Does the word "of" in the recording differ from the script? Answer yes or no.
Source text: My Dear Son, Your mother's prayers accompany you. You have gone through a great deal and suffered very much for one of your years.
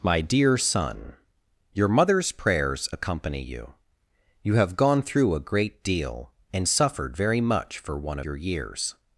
yes